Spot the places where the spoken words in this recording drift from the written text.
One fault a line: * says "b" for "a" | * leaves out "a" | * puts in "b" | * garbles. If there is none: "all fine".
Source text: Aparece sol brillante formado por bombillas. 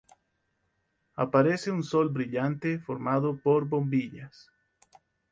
* puts in "un"